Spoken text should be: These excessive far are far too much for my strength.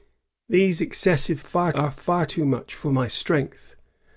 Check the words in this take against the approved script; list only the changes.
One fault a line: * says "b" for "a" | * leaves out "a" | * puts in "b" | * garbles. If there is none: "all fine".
all fine